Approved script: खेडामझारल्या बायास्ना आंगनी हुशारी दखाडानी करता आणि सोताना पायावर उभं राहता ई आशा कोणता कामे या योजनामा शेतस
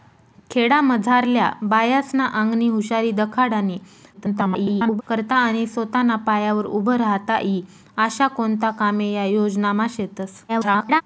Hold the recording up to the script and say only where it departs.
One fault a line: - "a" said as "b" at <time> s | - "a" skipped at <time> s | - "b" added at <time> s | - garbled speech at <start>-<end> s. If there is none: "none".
- garbled speech at 4.1-5.0 s
- garbled speech at 10.5-11.0 s